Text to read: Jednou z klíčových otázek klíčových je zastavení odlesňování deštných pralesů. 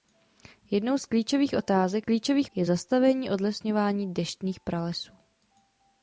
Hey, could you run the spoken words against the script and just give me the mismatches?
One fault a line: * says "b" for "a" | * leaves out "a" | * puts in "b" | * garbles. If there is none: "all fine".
all fine